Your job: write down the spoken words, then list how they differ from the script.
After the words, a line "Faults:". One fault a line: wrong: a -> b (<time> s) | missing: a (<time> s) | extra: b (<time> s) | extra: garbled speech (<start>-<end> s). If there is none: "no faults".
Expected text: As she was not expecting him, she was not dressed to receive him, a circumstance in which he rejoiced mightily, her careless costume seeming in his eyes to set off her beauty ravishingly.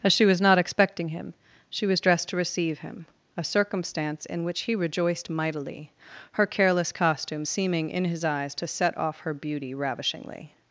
As she was not expecting him, she was dressed to receive him, a circumstance in which he rejoiced mightily, her careless costume seeming in his eyes to set off her beauty ravishingly.
Faults:
missing: not (2.0 s)